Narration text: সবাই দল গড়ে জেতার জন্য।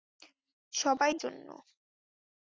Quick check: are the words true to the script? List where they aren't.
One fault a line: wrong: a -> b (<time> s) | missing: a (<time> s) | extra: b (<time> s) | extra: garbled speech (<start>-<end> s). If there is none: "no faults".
missing: দল গড়ে জেতার (1.1 s)